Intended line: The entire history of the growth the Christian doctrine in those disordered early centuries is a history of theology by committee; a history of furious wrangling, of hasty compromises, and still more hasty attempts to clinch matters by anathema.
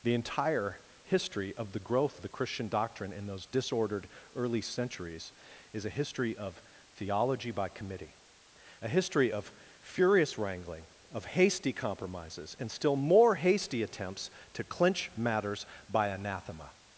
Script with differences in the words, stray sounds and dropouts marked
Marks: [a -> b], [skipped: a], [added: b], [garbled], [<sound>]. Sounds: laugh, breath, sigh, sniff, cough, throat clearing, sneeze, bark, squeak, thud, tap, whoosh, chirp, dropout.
The entire history of the growth the Christian doctrine in those disordered early centuries is a history of theology by committee; a history of furious wrangling, of hasty compromises, and still more hasty attempts to clinch matters by anathema.